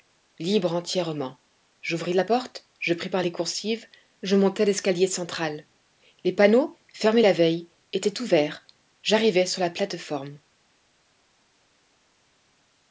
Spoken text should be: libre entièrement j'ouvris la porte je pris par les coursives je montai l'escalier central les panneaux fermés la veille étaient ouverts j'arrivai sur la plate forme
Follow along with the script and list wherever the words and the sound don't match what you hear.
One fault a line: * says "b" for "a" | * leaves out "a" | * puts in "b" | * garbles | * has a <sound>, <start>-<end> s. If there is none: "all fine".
all fine